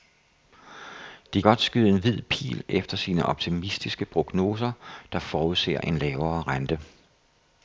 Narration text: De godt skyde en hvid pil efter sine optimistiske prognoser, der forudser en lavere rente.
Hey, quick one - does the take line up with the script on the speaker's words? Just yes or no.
yes